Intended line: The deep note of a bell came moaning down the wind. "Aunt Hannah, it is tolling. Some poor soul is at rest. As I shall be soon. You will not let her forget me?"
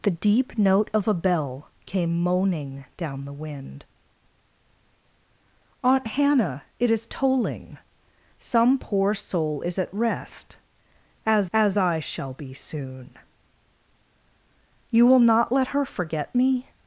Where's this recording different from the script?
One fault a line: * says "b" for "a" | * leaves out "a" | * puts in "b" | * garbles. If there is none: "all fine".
* puts in "as"